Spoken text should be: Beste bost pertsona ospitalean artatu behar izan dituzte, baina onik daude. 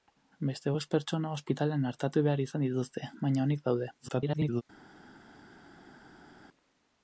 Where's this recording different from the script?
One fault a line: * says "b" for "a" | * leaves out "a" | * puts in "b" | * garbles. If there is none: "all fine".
* garbles